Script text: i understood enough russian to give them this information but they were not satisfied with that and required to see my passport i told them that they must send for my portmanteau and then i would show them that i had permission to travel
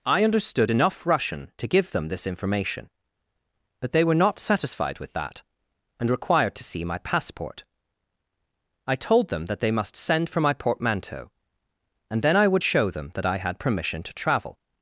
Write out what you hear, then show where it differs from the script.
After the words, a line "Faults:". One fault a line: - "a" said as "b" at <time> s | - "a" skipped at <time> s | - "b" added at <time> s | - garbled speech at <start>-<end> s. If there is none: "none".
i understood enough russian to give them this information but they were not satisfied with that and required to see my passport i told them that they must send for my portmanteau and then i would show them that i had permission to travel
Faults:
none